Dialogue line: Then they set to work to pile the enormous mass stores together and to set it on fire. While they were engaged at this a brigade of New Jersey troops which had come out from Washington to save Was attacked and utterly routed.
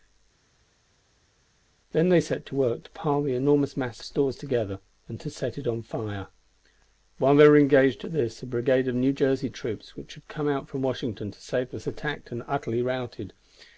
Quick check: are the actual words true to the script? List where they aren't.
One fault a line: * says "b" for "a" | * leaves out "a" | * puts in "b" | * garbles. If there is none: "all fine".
all fine